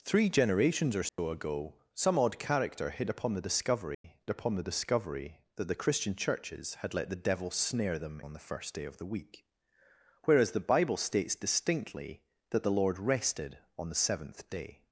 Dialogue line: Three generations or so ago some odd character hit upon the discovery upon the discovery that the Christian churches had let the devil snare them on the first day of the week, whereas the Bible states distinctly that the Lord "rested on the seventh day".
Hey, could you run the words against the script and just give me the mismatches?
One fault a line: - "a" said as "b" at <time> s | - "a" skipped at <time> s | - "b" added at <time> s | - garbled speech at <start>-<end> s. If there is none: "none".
none